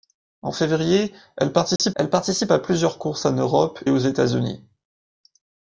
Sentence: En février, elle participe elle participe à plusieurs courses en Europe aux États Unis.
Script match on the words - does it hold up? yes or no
yes